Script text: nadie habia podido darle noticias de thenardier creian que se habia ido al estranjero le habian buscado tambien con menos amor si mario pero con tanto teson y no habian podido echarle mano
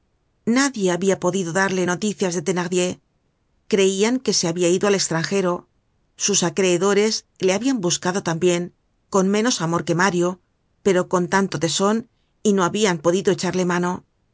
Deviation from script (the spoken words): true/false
true